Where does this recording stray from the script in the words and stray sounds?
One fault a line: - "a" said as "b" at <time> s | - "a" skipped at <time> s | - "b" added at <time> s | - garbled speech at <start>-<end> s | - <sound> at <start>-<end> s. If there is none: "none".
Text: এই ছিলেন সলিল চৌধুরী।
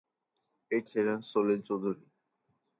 none